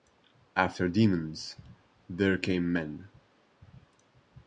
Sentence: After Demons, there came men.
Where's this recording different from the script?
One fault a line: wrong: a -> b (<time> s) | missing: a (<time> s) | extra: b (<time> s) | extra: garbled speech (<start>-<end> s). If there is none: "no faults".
no faults